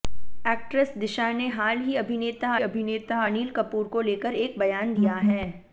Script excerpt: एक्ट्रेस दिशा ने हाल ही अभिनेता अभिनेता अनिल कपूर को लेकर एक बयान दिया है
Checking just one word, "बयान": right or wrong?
right